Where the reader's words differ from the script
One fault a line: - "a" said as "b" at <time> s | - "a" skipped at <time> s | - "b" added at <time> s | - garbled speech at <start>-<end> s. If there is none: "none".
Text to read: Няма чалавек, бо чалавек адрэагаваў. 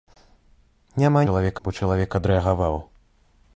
none